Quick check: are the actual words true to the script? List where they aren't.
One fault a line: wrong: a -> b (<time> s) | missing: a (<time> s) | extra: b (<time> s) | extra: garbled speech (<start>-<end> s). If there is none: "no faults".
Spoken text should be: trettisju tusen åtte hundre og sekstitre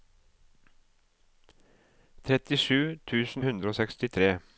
missing: åtte (3.5 s)